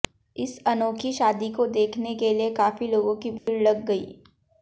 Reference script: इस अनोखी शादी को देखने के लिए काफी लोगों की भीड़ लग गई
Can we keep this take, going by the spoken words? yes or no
yes